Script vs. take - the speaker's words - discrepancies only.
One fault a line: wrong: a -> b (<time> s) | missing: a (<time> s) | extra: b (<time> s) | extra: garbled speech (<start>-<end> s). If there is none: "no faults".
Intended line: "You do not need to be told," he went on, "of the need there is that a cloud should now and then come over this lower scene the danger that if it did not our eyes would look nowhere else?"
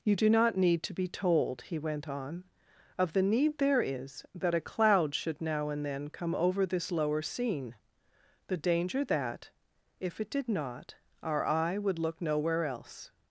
wrong: eyes -> eye (11.4 s)